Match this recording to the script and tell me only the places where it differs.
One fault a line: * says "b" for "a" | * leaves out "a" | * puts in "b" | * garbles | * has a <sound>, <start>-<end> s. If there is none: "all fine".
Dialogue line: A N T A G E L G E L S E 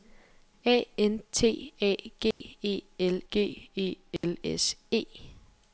* has a dropout, 2.3-2.4 s
* has a dropout, 4.2-4.2 s